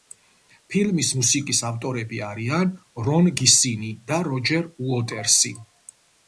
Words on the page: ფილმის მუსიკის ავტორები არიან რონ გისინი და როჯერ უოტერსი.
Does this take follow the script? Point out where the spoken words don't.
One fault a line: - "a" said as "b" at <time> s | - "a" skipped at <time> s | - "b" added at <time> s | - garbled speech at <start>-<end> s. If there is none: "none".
none